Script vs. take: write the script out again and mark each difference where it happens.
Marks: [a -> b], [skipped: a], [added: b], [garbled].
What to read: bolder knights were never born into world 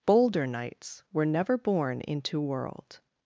bolder knights were never born into world